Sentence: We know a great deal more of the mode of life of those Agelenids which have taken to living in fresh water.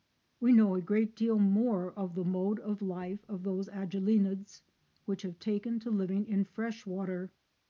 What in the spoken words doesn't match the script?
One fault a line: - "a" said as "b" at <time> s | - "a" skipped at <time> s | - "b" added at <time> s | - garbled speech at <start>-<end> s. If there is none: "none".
none